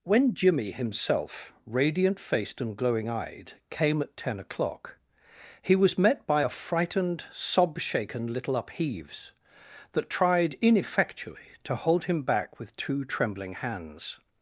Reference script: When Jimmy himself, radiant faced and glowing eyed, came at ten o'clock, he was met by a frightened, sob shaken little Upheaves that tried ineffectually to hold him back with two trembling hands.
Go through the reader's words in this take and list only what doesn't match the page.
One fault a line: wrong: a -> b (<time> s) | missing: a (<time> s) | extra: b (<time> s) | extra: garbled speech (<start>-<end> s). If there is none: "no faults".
no faults